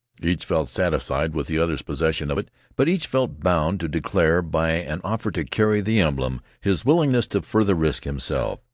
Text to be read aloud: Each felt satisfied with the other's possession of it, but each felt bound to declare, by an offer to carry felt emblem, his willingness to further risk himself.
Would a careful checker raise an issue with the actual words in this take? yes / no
yes